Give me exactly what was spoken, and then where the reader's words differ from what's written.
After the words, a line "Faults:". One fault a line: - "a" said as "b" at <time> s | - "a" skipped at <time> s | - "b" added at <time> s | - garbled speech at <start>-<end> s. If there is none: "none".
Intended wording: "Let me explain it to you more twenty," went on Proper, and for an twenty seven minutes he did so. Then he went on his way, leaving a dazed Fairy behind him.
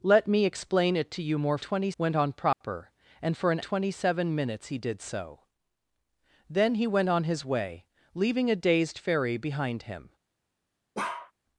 "Let me explain it to you more twenty," went on Proper, and for an twenty seven minutes he did so. Then he went on his way, leaving a dazed Fairy behind him.
Faults:
none